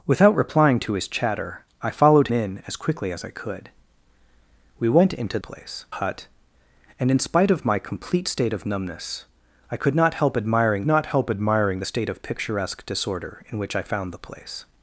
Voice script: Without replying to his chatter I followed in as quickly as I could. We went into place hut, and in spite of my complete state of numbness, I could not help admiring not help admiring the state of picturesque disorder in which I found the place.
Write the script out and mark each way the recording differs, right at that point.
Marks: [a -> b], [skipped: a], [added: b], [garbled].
Without replying to his chatter I followed in as quickly as I could. We went into place hut, and in spite of my complete state of numbness, I could not help admiring not help admiring the state of picturesque disorder in which I found the place.